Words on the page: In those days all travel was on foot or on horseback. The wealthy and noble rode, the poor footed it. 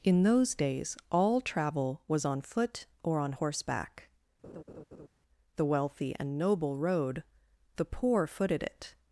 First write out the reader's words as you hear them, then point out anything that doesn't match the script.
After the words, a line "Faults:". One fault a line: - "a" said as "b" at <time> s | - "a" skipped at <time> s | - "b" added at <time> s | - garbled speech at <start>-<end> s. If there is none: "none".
In those days all travel was on foot or on horseback. The wealthy and noble rode, the poor footed it.
Faults:
none